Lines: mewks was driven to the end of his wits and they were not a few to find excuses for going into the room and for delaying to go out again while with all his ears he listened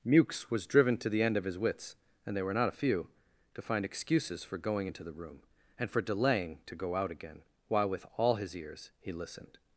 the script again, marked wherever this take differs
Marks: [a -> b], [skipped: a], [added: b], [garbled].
mewks was driven to the end of his wits and they were not a few to find excuses for going into the room and for delaying to go out again while with all his ears he listened